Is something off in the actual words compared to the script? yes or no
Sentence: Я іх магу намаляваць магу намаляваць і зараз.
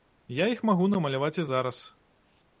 yes